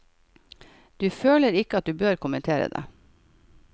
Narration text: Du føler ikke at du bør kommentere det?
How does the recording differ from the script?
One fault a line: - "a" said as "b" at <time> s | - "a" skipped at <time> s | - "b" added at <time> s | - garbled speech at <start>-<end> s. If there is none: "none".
none